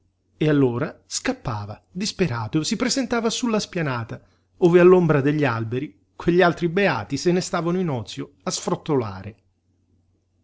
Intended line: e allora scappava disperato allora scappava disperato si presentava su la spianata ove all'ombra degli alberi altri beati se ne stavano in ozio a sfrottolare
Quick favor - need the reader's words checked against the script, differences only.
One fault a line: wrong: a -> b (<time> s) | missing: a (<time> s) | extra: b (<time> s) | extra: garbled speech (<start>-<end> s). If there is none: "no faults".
missing: allora scappava disperato (2.6 s)
extra: quegli (6.2 s)